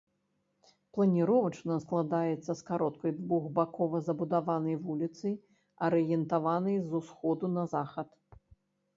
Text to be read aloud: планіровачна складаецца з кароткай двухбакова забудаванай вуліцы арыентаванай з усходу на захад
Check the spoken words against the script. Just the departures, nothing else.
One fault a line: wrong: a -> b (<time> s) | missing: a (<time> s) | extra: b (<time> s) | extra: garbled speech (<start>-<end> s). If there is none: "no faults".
no faults